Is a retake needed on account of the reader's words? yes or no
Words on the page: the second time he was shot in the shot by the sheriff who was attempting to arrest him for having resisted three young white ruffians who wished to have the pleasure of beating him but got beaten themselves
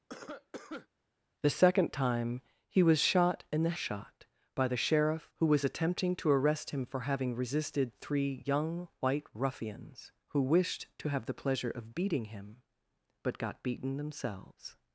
no